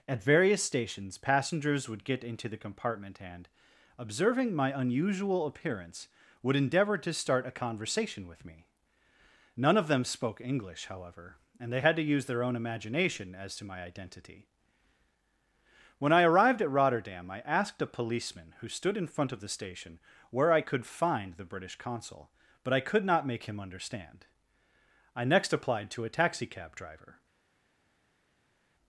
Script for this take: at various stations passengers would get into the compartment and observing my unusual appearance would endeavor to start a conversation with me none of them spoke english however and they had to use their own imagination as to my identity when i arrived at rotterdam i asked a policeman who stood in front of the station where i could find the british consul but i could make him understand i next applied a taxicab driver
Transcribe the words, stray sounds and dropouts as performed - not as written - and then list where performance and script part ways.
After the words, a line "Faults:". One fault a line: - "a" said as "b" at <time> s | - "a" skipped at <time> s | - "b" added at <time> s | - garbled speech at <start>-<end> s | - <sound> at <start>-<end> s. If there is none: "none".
at various stations passengers would get into the compartment and observing my unusual appearance would endeavor to start a conversation with me none of them spoke english however and they had to use their own imagination as to my identity when i arrived at rotterdam i asked a policeman who stood in front of the station where i could find the british consul but i could not make him understand i next applied to a taxicab driver
Faults:
- "not" added at 23.1 s
- "to" added at 25.9 s